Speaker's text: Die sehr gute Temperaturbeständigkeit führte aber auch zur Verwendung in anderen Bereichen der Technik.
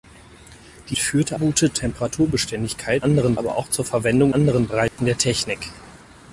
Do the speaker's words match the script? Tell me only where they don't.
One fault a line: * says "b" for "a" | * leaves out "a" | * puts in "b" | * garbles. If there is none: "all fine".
* says "führte" for "sehr"
* says "anderen" for "führte"
* leaves out "in"